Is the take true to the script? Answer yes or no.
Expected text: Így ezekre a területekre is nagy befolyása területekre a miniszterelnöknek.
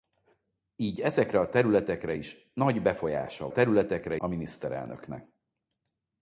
yes